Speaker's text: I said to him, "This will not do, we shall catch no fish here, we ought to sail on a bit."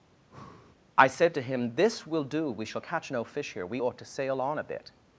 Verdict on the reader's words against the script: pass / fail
fail